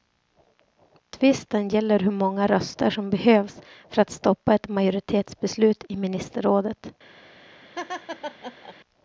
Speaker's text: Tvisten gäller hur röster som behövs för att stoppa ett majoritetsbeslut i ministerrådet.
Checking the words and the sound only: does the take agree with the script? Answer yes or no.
no